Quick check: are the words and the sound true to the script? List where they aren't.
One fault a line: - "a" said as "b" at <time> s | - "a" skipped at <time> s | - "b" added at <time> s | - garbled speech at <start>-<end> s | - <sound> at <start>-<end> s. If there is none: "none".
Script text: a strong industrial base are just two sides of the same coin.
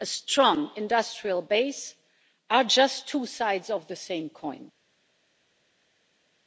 none